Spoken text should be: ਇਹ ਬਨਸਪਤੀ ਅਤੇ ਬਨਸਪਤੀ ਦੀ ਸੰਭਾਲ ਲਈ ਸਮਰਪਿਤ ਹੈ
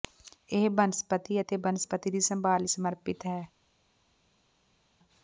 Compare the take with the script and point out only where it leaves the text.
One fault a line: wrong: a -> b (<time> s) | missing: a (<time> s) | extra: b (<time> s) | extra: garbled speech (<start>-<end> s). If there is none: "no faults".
no faults